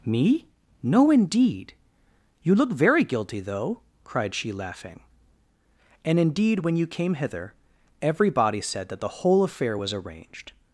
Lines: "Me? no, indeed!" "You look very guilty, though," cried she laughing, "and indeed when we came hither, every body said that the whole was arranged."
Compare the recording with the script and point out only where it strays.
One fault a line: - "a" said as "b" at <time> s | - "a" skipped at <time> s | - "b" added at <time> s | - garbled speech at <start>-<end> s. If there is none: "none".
- "we" said as "you" at 6.8 s
- "affair" added at 9.4 s